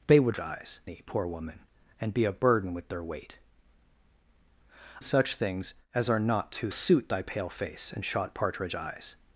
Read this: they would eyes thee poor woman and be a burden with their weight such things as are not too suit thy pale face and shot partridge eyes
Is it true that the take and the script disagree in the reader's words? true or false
false